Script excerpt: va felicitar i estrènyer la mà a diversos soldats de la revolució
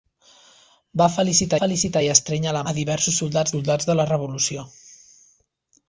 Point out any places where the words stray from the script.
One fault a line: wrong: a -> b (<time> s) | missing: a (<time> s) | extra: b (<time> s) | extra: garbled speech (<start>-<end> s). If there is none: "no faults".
extra: felicitar (1.6 s)
missing: mà (2.6 s)
extra: soldats (3.6 s)